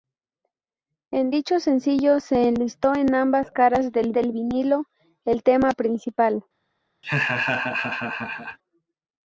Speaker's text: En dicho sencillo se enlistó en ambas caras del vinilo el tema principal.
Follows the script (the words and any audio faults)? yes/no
no